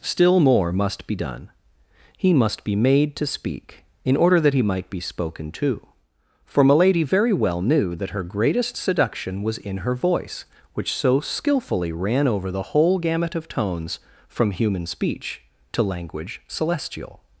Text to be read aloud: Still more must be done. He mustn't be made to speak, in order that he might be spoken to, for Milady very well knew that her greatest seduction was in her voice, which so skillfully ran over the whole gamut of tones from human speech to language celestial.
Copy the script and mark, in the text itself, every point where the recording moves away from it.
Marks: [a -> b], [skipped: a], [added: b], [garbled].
Still more must be done. He [mustn't -> must] be made to speak, in order that he might be spoken to, for Milady very well knew that her greatest seduction was in her voice, which so skillfully ran over the whole gamut of tones from human speech to language celestial.